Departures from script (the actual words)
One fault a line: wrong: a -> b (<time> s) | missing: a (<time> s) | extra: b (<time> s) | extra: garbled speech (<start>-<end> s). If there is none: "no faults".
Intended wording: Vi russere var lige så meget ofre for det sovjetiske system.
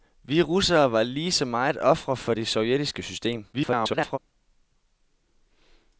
extra: garbled speech (3.5-4.2 s)